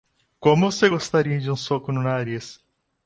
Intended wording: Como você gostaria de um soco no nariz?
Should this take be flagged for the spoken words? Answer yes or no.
no